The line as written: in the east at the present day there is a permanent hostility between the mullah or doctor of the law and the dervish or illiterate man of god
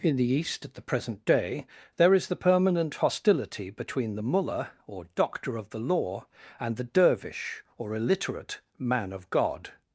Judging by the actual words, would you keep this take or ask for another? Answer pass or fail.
fail